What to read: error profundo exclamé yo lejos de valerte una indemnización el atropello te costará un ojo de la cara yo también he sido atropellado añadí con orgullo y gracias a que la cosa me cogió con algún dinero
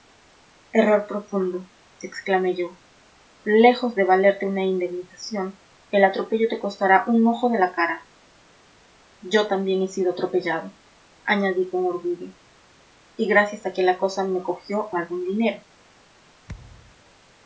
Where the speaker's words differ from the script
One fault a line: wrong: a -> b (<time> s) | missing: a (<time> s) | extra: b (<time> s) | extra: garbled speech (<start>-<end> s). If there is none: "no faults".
missing: con (14.9 s)